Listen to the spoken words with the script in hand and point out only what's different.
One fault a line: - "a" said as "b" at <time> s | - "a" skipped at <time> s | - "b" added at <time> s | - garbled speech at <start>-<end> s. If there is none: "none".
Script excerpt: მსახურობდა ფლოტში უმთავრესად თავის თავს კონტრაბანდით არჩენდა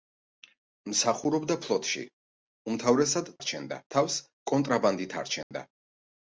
- "თავის" said as "არჩენდა" at 3.4 s